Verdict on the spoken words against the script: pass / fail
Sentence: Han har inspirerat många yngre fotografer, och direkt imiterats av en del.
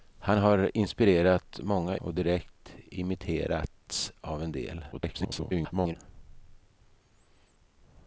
fail